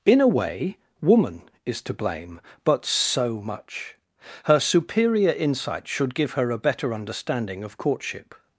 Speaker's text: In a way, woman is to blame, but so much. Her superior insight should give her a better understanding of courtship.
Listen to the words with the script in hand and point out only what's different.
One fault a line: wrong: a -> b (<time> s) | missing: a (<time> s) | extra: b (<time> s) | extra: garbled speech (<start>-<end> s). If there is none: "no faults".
no faults